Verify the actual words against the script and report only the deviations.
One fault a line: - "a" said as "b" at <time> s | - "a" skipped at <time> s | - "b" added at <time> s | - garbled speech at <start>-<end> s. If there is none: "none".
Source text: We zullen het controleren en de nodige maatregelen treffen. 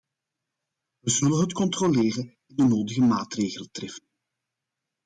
none